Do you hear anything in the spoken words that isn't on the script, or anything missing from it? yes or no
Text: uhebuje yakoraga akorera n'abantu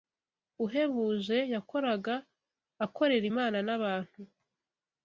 yes